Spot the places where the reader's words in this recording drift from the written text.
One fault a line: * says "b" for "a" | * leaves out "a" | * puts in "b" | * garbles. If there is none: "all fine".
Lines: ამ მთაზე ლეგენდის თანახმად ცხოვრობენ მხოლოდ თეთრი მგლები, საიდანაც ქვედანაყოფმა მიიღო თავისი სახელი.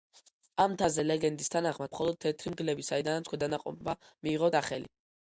* leaves out "ცხოვრობენ"
* leaves out "თავისი"